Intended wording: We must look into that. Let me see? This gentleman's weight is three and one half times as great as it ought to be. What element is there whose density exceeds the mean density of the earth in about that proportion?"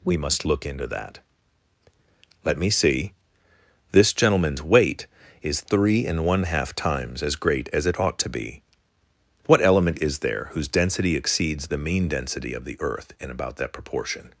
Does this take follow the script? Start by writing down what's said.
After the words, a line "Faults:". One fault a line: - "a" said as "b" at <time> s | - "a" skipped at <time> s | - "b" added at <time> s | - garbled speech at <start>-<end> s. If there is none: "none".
We must look into that. Let me see? This gentleman's weight is three and one half times as great as it ought to be. What element is there whose density exceeds the mean density of the earth in about that proportion?"
Faults:
none